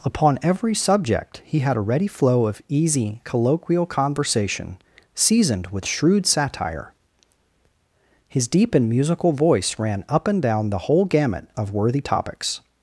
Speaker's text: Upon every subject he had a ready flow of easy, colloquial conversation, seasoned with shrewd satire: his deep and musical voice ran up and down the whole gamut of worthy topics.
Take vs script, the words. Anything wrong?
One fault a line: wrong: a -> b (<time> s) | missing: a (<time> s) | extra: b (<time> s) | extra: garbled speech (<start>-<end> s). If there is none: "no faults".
no faults